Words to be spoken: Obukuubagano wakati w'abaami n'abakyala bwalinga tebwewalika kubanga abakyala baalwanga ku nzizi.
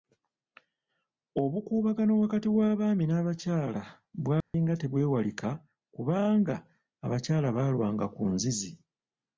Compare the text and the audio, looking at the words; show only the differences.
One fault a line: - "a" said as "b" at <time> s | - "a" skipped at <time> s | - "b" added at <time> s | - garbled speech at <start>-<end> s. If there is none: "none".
none